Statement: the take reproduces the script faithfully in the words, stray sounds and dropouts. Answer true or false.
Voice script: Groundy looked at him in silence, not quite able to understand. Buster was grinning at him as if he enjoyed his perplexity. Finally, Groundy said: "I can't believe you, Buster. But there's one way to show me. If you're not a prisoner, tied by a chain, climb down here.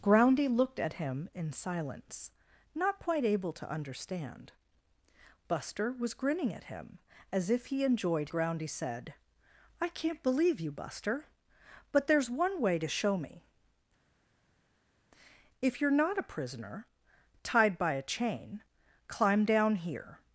false